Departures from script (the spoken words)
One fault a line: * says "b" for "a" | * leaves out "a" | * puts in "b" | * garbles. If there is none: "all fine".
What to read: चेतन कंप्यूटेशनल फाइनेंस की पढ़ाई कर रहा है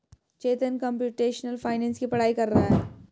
all fine